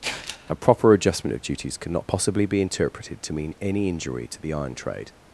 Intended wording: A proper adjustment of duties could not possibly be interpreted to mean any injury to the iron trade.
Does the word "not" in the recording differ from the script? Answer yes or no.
yes